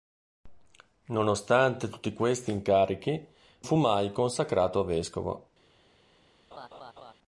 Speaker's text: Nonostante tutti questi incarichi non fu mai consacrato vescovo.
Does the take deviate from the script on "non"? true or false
true